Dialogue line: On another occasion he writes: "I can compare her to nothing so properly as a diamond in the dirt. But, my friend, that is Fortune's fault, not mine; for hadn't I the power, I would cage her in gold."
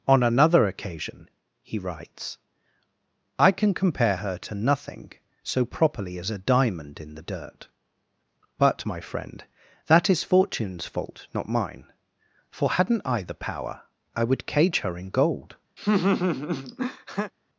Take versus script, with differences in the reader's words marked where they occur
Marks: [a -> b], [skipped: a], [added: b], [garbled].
On another occasion he writes: "I can compare her to nothing so properly as a diamond in the dirt. But, my friend, that is Fortune's fault, not mine; for hadn't I the power, I would cage her in gold."